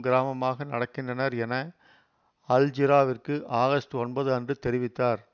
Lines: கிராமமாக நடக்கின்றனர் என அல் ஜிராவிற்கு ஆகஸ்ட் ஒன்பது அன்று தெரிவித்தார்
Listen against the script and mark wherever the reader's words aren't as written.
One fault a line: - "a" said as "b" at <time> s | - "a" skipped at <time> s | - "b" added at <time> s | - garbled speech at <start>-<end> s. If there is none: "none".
none